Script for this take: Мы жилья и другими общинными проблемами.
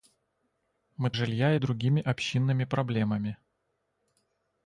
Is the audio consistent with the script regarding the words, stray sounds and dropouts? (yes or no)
yes